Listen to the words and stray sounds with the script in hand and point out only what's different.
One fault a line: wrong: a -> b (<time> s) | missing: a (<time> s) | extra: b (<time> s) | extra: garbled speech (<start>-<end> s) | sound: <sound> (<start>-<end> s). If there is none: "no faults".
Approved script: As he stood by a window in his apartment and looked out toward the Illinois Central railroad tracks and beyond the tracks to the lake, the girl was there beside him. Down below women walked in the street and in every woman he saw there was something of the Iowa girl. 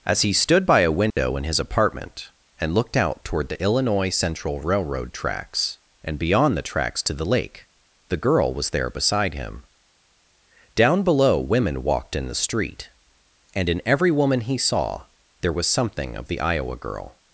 sound: dropout (1.1-1.2 s)